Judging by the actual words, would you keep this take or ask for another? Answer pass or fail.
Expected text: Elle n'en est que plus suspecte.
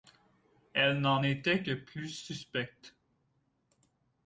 fail